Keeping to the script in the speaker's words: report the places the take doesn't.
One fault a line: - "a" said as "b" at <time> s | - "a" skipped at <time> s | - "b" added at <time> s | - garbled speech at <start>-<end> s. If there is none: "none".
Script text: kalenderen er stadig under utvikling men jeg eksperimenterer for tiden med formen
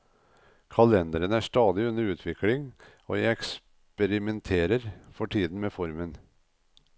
- "men" said as "og" at 3.0 s